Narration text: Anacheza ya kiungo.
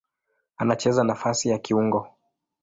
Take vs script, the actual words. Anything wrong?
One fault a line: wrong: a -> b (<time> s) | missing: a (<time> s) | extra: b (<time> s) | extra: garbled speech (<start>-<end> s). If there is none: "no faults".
extra: nafasi (1.0 s)